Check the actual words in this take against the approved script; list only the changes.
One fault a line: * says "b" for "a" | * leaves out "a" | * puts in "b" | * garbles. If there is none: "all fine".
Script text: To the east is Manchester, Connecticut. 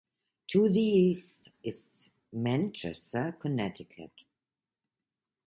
all fine